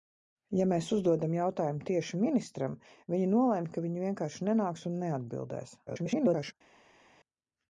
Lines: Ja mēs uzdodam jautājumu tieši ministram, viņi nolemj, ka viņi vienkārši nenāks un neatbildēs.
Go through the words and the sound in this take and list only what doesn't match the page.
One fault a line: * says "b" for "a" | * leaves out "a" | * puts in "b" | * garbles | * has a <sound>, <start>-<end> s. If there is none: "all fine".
* garbles